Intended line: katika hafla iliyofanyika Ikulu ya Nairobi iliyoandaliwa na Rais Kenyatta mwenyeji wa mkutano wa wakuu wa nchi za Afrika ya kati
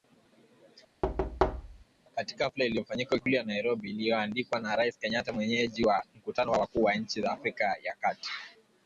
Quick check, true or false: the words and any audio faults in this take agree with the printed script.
false